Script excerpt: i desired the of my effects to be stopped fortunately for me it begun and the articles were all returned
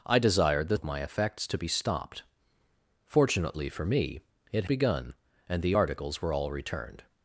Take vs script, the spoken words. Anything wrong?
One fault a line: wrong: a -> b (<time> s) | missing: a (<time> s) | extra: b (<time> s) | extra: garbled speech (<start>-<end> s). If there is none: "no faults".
no faults